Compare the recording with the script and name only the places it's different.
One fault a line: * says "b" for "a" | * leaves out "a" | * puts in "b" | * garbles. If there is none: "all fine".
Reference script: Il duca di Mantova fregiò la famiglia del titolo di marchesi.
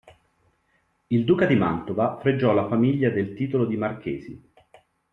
all fine